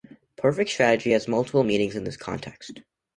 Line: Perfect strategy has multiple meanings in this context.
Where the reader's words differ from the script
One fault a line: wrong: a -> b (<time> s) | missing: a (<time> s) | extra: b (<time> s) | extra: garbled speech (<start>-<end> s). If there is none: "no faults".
no faults